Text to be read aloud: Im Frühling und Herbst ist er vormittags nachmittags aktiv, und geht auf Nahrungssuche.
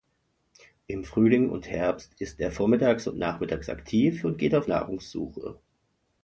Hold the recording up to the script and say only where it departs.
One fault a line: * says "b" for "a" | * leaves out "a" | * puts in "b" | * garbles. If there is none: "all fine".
* puts in "und"